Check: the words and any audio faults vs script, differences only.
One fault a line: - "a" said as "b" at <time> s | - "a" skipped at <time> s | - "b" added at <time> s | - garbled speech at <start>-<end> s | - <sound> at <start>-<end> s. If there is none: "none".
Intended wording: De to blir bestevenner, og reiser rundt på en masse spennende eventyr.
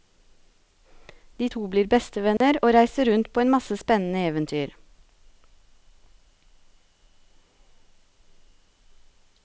- dropout at 2.4-2.4 s